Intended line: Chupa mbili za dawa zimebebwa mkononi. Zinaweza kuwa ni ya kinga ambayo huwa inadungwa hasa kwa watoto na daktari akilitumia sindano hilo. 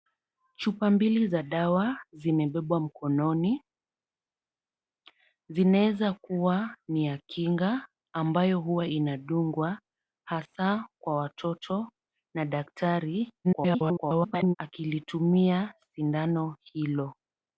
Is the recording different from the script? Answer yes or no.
yes